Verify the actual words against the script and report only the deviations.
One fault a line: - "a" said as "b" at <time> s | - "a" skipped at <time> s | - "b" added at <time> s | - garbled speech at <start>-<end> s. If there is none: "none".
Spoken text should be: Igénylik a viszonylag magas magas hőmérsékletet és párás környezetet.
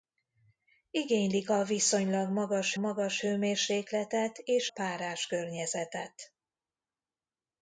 none